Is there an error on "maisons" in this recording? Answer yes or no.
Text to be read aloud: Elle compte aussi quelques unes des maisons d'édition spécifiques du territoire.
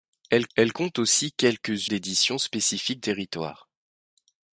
yes